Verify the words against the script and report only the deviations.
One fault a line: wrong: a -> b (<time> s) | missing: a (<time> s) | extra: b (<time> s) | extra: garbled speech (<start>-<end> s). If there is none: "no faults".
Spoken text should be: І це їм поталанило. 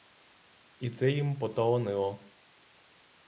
no faults